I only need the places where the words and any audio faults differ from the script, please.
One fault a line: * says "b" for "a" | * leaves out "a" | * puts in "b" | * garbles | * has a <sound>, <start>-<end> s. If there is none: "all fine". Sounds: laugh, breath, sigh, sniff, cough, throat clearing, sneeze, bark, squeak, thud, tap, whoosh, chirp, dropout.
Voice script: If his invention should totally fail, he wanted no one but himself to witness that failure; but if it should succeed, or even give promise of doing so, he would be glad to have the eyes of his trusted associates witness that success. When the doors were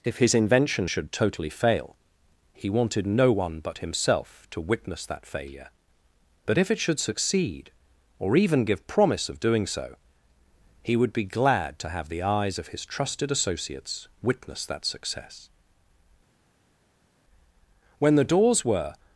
all fine